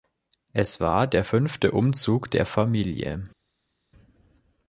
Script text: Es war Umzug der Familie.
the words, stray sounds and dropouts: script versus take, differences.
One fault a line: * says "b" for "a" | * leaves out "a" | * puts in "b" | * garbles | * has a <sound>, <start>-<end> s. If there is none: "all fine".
* puts in "der fünfte"